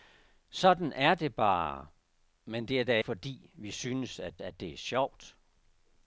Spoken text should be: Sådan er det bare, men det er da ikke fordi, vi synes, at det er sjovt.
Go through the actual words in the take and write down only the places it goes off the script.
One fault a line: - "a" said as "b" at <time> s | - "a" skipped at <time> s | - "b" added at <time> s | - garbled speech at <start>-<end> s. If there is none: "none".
- "ikke" skipped at 3.0 s
- "at" added at 4.4 s